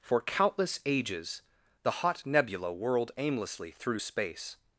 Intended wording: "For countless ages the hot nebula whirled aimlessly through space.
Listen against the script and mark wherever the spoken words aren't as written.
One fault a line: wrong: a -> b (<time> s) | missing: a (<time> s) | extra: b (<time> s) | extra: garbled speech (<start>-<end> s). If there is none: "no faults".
no faults